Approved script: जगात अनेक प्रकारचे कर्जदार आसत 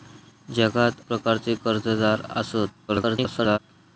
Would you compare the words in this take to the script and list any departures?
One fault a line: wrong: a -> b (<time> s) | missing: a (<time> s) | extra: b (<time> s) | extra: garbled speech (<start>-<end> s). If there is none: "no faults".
missing: अनेक (1.0 s)
extra: garbled speech (2.9-3.6 s)